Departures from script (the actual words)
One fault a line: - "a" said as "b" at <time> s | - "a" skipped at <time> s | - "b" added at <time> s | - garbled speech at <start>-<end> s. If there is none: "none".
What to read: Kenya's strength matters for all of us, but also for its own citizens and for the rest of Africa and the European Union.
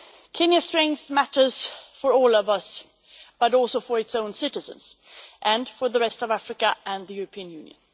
none